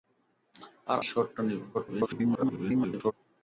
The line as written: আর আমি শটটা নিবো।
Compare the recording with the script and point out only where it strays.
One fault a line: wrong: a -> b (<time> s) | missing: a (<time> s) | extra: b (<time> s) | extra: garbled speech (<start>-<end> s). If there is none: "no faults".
missing: আমি (1.0 s)
extra: garbled speech (1.7-3.1 s)